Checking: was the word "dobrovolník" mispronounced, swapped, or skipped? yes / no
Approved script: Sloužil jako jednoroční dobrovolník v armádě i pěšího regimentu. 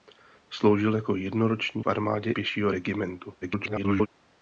yes